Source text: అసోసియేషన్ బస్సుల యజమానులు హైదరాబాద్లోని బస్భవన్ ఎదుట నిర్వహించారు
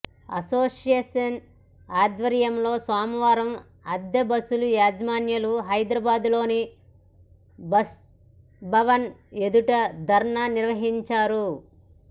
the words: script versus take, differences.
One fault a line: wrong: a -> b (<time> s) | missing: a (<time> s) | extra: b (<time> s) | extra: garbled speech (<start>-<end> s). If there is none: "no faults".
extra: ఆధ్వర్యంలో సోమవారం అద్దె (1.9 s)
extra: ధర్నా (10.1 s)